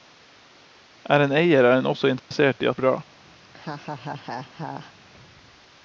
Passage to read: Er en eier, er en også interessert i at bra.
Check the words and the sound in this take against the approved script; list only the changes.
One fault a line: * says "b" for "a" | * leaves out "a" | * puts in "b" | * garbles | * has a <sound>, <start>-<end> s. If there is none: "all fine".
* has a dropout, 2.2-2.3 s
* has a laugh, 3.4-4.9 s